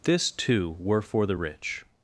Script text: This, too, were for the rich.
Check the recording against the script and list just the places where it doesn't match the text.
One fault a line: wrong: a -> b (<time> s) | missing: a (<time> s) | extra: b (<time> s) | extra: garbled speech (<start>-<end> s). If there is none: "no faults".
no faults